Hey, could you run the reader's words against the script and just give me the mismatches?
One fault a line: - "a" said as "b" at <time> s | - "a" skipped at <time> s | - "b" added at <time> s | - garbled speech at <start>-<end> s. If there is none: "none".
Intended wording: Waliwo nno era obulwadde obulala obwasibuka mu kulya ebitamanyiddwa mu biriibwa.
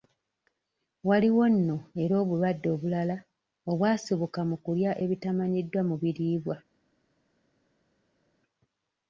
none